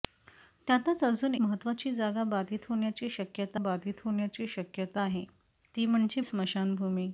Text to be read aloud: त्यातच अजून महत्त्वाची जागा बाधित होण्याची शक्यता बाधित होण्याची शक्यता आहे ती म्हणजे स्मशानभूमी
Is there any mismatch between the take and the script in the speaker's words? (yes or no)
no